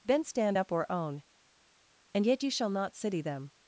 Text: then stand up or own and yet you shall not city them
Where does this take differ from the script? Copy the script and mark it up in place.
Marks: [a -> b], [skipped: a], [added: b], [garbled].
then stand up or own and yet you shall not city them